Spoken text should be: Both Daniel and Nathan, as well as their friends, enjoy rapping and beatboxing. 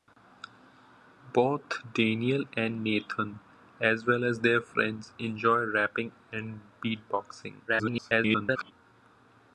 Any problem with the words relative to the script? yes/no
yes